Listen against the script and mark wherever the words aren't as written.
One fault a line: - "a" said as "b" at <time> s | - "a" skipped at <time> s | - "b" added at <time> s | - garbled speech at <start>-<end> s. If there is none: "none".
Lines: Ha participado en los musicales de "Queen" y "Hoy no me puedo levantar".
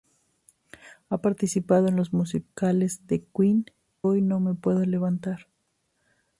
- "y" skipped at 3.6 s